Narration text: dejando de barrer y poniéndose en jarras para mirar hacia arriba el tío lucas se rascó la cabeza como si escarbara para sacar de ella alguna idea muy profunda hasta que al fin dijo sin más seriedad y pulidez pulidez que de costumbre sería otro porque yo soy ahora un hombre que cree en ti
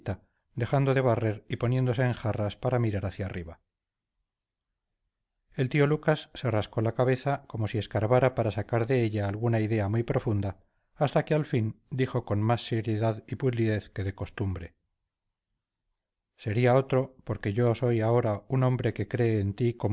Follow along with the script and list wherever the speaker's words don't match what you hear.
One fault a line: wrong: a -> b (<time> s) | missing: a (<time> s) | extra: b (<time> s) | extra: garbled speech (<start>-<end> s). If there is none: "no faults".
wrong: sin -> con (12.2 s)
missing: pulidez (13.9 s)